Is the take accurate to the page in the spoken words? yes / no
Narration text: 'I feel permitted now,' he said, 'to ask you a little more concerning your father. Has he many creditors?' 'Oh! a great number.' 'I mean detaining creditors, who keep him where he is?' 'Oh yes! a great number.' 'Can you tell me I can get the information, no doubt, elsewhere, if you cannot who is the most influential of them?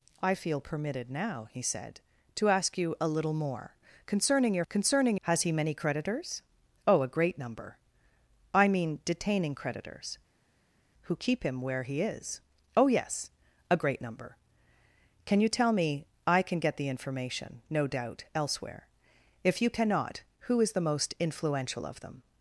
no